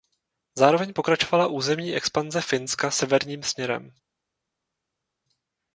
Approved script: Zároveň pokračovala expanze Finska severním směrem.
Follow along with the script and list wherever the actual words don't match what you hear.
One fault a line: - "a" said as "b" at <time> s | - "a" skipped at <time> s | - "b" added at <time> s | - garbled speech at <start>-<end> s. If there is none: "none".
- "územní" added at 1.5 s